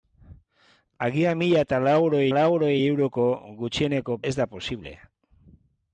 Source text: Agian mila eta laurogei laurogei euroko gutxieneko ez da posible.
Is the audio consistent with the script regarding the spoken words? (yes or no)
yes